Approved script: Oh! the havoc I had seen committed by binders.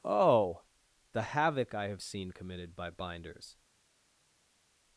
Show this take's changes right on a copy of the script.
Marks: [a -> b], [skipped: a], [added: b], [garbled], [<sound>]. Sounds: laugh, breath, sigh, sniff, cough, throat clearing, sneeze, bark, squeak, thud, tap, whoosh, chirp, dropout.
Oh! the havoc I [had -> have] seen committed by binders.